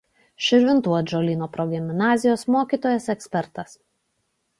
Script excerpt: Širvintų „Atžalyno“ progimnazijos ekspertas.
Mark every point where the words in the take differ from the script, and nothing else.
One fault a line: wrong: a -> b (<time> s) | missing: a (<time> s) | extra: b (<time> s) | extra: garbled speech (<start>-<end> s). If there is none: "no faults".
extra: mokytojas (2.5 s)